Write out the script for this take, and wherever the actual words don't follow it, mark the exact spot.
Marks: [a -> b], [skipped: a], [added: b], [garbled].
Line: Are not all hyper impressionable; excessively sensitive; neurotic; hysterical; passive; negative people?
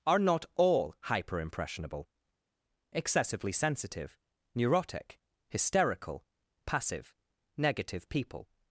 Are not all hyper impressionable; excessively sensitive; neurotic; hysterical; passive; negative people?